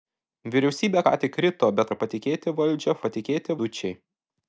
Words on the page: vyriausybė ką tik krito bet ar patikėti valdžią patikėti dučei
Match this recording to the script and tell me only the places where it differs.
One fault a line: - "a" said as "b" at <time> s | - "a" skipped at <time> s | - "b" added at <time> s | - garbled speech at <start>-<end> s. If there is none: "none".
none